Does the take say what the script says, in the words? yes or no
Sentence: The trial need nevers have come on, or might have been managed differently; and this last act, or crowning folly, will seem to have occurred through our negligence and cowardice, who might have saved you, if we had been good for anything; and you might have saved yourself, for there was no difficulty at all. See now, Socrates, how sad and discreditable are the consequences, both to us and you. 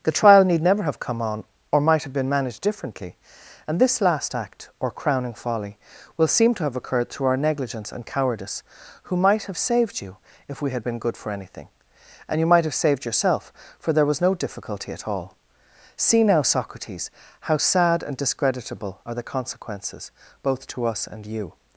no